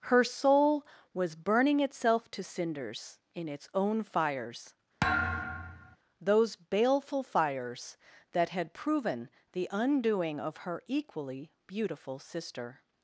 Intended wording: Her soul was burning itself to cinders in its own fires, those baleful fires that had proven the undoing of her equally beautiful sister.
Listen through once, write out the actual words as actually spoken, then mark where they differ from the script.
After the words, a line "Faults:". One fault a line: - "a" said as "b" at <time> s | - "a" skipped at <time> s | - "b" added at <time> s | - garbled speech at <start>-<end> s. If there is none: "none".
Her soul was burning itself to cinders in its own fires, those baleful fires that had proven the undoing of her equally beautiful sister.
Faults:
none